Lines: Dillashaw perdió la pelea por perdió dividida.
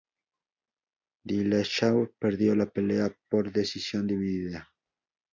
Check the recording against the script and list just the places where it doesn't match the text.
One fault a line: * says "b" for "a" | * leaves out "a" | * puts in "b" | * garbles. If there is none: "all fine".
* says "decisión" for "perdió"